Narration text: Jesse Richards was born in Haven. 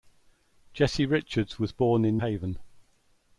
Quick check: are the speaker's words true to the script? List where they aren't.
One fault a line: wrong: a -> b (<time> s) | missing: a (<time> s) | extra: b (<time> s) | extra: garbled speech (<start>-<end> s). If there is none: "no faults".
no faults